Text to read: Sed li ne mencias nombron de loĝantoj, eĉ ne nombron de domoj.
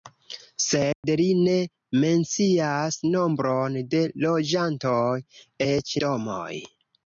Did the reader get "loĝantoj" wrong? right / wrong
right